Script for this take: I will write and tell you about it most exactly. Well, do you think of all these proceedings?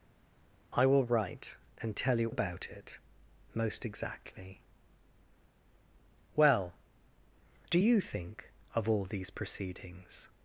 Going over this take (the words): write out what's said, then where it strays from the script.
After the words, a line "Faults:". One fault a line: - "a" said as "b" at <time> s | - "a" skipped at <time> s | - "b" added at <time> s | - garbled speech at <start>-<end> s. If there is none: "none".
I will write and tell you about it most exactly. Well, do you think of all these proceedings?
Faults:
none